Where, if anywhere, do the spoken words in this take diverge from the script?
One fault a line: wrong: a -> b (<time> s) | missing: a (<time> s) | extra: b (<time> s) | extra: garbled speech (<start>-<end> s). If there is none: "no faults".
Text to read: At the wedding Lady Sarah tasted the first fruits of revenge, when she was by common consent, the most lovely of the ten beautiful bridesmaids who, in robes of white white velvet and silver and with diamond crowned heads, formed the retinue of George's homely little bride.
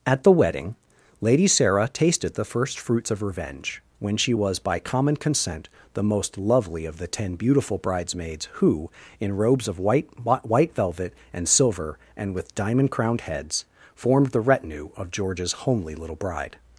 no faults